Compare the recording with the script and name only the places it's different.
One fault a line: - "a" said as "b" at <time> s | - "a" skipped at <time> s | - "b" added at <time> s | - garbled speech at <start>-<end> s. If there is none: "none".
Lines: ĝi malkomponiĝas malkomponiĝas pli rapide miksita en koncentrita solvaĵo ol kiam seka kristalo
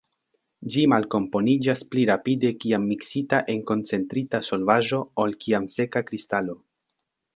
- "malkomponiĝas" skipped at 1.8 s
- "kiam" added at 2.6 s